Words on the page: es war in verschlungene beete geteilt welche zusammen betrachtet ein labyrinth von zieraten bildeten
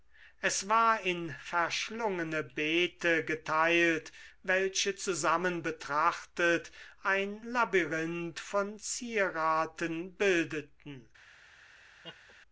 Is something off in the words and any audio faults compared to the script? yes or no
yes